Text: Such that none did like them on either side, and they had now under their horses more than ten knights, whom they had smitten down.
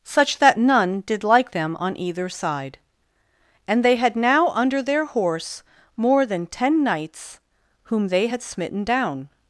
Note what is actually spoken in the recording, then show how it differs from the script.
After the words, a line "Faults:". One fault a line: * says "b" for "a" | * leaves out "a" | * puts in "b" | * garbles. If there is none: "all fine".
Such that none did like them on either side, and they had now under their horse more than ten knights, whom they had smitten down.
Faults:
* says "horse" for "horses"